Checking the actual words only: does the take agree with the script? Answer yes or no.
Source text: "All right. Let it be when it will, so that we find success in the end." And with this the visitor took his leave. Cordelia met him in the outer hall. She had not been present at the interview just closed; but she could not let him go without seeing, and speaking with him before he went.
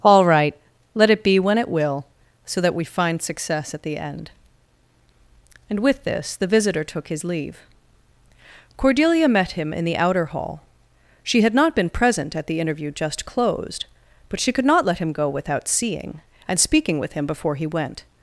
no